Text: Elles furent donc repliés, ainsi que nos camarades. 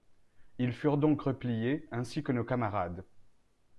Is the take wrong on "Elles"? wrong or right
wrong